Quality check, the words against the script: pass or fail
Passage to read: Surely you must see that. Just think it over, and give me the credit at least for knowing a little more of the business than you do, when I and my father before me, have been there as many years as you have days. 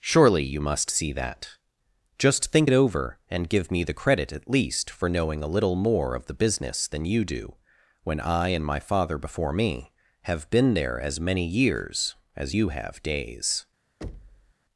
pass